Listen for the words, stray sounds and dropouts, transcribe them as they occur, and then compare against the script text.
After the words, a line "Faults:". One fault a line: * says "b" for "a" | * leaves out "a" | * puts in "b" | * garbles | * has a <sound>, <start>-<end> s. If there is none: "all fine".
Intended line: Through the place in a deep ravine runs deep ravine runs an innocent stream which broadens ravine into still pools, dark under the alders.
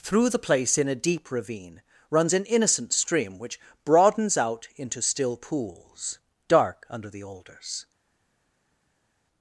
Through the place in a deep ravine runs an innocent stream which broadens out into still pools, dark under the alders.
Faults:
* leaves out "deep ravine runs"
* says "out" for "ravine"